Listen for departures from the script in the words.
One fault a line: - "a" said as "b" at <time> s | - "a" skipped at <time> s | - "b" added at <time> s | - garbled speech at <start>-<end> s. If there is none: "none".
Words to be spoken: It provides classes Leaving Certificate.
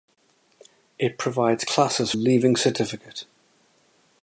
none